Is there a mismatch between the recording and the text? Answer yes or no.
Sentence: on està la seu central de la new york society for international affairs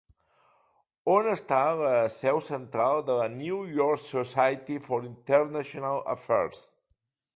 no